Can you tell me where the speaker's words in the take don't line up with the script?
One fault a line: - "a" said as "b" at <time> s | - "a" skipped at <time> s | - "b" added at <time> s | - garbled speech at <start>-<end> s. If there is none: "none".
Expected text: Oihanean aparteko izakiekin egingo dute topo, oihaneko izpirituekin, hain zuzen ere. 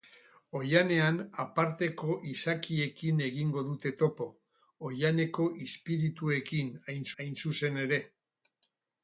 - "hain" added at 7.2 s